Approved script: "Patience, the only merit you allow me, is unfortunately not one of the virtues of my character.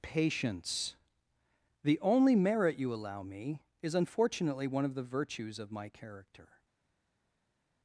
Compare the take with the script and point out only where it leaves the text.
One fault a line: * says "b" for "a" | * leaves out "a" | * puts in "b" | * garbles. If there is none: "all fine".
* leaves out "not"